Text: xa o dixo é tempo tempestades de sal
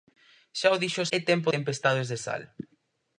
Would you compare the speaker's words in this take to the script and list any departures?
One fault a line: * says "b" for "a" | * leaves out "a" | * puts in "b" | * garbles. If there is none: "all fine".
all fine